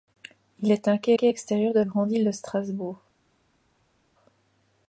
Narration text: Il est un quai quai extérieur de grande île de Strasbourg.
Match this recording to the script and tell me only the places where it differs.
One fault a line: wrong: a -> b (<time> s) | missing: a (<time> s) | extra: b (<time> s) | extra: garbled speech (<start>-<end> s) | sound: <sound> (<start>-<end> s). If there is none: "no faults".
no faults